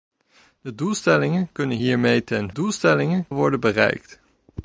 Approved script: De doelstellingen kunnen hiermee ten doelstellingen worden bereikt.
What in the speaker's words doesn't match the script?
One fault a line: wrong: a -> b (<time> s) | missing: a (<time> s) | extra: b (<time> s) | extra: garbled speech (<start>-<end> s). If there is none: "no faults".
no faults